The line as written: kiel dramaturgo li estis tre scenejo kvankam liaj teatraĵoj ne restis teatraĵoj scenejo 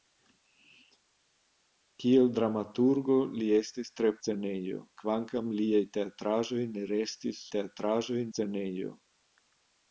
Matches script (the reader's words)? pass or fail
pass